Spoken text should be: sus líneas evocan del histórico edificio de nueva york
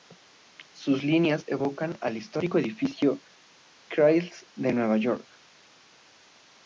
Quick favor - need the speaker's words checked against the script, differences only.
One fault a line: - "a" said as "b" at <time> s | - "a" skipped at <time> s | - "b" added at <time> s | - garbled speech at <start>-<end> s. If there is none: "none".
- "del" said as "al" at 2.0 s
- "chrysler" added at 3.9 s